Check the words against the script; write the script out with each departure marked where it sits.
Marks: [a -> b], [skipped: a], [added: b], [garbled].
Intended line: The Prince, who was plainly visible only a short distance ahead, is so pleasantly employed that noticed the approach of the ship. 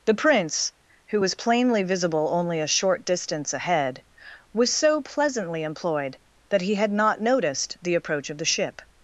The Prince, who was plainly visible only a short distance ahead, [is -> was] so pleasantly employed that [added: he had not] noticed the approach of the ship.